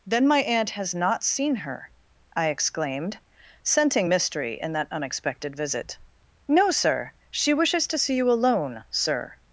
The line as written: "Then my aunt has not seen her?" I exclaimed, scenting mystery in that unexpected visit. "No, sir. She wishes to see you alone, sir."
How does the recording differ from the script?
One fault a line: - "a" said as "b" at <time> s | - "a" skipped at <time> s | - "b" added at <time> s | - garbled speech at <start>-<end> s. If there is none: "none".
none